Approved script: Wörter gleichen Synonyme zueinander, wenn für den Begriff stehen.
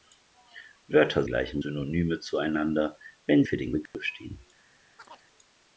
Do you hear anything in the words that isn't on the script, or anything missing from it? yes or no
no